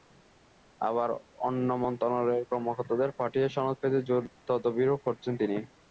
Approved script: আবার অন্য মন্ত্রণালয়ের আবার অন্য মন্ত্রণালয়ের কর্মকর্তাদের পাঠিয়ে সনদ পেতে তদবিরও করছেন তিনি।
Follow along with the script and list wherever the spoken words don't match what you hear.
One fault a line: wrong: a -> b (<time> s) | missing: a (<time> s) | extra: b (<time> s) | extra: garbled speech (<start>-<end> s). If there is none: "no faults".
missing: আবার অন্য মন্ত্রণালয়ের (2.5 s)
extra: জোর (4.1 s)